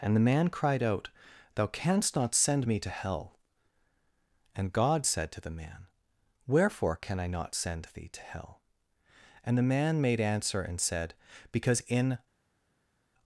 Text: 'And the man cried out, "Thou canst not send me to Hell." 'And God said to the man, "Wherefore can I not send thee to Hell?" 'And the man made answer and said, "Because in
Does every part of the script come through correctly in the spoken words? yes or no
yes